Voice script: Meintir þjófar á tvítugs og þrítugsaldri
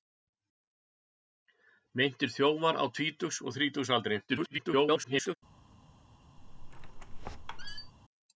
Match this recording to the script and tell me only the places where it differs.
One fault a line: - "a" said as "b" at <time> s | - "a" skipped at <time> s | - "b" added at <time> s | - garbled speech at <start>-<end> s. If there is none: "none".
- garbled speech at 4.3-5.4 s